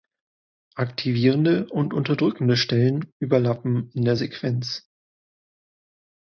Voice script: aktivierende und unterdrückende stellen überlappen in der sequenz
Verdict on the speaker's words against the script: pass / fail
pass